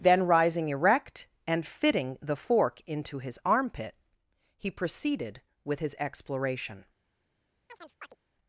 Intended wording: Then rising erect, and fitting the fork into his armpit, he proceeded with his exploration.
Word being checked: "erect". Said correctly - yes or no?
yes